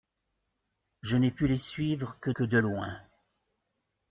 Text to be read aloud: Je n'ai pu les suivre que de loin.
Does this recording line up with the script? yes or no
no